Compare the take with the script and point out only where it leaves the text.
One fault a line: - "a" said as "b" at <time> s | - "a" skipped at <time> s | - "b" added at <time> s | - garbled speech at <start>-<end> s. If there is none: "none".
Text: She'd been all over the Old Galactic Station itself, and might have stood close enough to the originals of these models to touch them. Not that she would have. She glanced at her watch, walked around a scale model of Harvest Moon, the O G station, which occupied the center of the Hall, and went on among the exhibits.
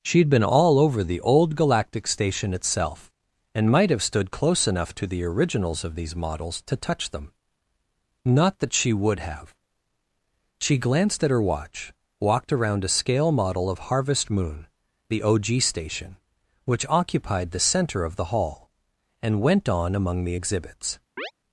none